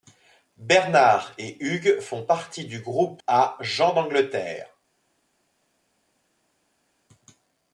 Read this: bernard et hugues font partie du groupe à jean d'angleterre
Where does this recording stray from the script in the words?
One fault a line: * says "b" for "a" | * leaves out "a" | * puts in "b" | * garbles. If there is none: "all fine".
all fine